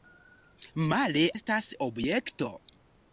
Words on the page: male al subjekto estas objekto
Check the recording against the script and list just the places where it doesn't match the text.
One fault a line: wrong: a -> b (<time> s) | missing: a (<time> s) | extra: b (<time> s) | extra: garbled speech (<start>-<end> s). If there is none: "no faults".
missing: al subjekto (1.2 s)